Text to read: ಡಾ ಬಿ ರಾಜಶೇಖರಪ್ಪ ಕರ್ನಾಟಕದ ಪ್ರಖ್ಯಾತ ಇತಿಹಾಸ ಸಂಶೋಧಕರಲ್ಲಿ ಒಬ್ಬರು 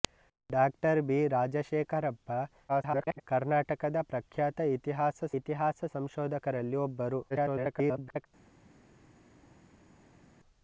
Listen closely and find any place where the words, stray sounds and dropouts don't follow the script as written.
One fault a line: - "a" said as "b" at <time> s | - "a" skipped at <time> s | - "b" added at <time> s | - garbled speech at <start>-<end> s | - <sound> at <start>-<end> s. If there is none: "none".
- garbled speech at 2.7-3.2 s
- "ಇತಿಹಾಸ" added at 5.4 s
- garbled speech at 7.3-8.3 s